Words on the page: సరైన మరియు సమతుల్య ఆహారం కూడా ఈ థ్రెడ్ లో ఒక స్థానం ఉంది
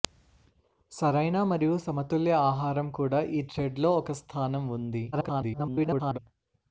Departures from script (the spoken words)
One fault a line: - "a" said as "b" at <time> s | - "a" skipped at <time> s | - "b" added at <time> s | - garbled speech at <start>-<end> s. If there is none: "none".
- garbled speech at 5.1-6.2 s